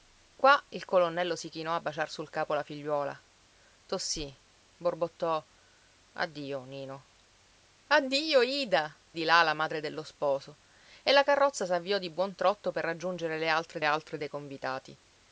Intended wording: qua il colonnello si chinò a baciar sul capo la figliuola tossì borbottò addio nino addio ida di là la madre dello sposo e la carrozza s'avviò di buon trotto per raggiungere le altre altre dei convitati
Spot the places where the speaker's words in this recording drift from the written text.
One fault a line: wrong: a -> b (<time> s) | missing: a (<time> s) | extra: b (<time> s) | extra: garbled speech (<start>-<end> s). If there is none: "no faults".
no faults